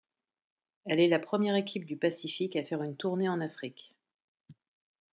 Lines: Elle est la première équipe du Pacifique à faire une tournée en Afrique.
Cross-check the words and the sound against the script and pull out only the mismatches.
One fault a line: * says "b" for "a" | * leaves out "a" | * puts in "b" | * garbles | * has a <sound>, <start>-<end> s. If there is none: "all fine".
all fine